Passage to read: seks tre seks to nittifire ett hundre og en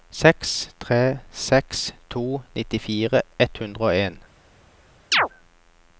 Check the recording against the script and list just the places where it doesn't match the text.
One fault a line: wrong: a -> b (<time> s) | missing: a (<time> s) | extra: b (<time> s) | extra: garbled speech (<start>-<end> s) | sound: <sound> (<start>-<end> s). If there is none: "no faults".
sound: chirp (5.1-5.3 s)